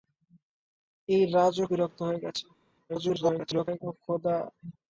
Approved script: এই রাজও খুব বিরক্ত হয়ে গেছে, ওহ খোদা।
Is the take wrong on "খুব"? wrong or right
wrong